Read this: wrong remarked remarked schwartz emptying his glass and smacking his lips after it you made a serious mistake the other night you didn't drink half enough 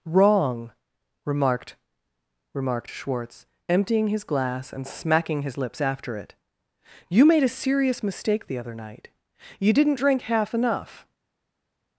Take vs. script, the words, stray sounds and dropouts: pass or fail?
pass